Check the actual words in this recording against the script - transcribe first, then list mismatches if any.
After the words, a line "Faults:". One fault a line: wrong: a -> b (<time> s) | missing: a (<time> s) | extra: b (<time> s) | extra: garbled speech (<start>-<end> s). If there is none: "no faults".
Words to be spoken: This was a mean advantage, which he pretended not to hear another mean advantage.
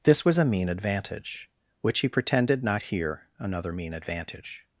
This was a mean advantage, which he pretended not hear another mean advantage.
Faults:
missing: to (2.8 s)